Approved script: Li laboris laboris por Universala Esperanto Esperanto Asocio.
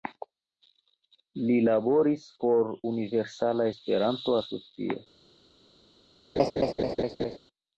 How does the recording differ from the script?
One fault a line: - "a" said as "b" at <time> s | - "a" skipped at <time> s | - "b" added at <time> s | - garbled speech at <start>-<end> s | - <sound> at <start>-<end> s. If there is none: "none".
- "laboris" skipped at 2.2 s
- "Esperanto" skipped at 4.4 s
- laugh at 6.4-7.4 s